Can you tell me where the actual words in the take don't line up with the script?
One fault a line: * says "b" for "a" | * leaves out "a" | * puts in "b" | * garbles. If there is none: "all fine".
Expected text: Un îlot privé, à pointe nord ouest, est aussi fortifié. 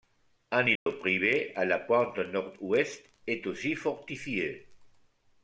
* puts in "la"